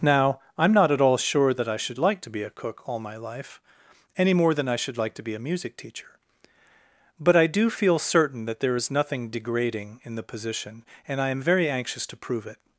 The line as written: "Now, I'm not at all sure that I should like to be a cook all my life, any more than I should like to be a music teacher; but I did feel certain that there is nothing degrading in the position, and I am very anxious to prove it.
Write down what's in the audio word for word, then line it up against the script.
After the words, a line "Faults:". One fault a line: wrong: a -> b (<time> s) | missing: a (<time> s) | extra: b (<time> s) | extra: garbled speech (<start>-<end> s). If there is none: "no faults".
"Now, I'm not at all sure that I should like to be a cook all my life, any more than I should like to be a music teacher; but I do feel certain that there is nothing degrading in the position, and I am very anxious to prove it.
Faults:
wrong: did -> do (7.5 s)